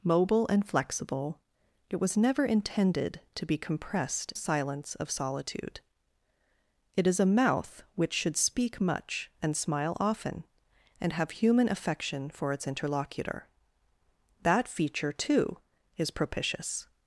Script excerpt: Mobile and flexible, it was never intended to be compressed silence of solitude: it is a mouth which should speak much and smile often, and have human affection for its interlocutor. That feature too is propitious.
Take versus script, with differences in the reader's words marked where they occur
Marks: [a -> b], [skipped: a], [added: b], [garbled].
Mobile and flexible, it was never intended to be compressed silence of solitude: it is a mouth which should speak much and smile often, and have human affection for its interlocutor. That feature too is propitious.